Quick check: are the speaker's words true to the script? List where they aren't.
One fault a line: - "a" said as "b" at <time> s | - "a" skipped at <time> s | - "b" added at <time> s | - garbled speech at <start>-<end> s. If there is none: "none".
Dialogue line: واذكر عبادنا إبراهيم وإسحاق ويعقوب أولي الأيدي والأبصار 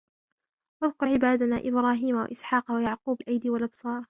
- "أولي" skipped at 3.2 s